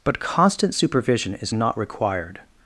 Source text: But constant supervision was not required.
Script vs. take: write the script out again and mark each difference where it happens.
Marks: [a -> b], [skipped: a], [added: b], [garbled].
But constant supervision [was -> is] not required.